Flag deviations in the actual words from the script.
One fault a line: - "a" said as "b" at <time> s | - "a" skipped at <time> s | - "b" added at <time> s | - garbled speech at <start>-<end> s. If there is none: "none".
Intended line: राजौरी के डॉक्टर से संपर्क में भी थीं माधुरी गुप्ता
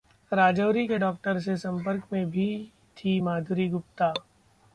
none